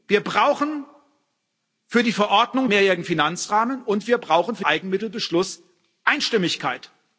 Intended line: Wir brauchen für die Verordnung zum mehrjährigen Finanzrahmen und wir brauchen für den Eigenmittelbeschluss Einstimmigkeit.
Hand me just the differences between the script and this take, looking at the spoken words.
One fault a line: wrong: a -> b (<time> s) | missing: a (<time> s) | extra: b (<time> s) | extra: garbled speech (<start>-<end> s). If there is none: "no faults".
missing: zum (2.7 s)
missing: den (4.6 s)